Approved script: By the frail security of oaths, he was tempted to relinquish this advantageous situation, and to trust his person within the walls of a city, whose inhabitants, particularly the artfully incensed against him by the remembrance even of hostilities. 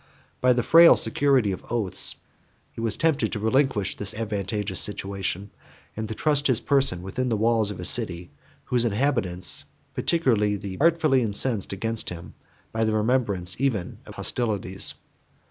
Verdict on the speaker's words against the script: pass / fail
pass